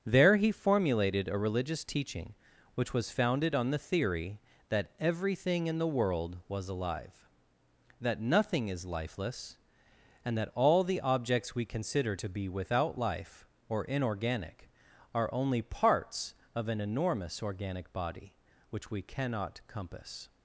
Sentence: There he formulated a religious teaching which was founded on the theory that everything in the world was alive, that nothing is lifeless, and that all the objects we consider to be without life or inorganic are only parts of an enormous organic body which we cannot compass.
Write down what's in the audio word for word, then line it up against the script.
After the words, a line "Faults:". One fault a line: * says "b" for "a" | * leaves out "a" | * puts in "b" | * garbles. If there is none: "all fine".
There he formulated a religious teaching which was founded on the theory that everything in the world was alive, that nothing is lifeless, and that all the objects we consider to be without life or inorganic are only parts of an enormous organic body which we cannot compass.
Faults:
all fine